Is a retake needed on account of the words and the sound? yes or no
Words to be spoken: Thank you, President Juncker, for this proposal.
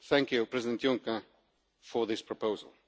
no